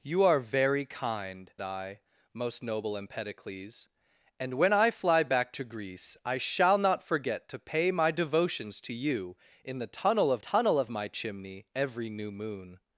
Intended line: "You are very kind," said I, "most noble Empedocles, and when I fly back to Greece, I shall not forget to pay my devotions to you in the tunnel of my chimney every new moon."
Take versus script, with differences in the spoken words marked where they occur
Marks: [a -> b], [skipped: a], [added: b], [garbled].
"You are very kind," [skipped: said] I, "most noble Empedocles, and when I fly back to Greece, I shall not forget to pay my devotions to you in the tunnel of [added: tunnel of] my chimney every new moon."